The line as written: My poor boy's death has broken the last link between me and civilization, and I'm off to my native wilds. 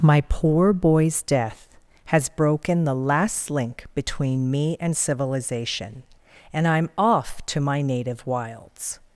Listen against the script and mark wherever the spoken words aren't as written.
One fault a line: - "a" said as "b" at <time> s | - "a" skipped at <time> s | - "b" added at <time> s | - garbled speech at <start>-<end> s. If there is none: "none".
none